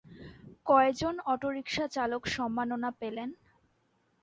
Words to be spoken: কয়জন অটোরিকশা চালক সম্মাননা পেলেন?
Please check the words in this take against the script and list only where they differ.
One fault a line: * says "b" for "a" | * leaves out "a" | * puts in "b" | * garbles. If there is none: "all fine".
all fine